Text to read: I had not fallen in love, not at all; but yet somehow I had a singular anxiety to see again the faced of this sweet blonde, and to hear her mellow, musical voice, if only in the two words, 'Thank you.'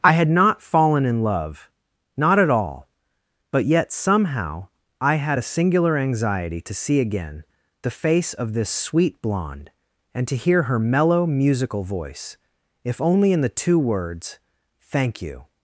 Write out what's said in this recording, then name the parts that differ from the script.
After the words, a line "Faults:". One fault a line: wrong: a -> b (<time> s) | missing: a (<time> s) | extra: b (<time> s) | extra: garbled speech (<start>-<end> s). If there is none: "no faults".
I had not fallen in love, not at all; but yet somehow I had a singular anxiety to see again the face of this sweet blonde, and to hear her mellow, musical voice, if only in the two words, 'Thank you.'
Faults:
wrong: faced -> face (7.9 s)